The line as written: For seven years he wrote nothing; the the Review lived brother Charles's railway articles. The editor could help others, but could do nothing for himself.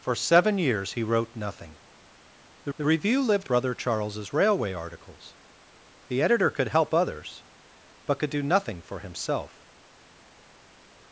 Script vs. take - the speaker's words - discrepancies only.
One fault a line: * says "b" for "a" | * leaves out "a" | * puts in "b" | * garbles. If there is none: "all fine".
all fine